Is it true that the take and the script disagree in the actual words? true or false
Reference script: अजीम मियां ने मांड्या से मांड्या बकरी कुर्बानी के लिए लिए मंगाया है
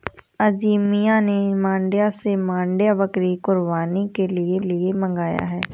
false